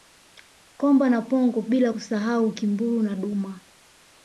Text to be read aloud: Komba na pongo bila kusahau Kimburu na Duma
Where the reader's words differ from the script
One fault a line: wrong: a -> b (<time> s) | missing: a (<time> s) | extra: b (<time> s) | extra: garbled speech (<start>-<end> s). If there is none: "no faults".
no faults